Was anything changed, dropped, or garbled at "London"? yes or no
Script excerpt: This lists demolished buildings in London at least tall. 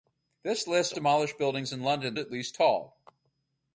no